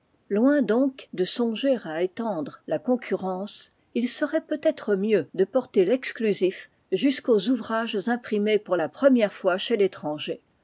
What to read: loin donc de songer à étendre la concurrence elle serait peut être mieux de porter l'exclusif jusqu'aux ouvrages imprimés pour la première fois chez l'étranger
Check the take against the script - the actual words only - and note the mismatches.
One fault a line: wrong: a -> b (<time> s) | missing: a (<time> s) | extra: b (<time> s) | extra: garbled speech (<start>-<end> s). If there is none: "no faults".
wrong: elle -> il (3.9 s)